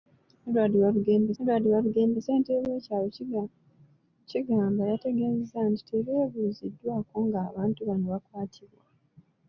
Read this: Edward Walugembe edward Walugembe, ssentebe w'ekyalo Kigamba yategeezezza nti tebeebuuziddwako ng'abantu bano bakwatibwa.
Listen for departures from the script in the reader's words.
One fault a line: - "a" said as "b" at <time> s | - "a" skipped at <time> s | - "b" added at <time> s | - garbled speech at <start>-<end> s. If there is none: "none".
none